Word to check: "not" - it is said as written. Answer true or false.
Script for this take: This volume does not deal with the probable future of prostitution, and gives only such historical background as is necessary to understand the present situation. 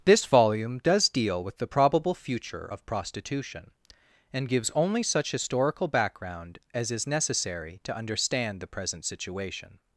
false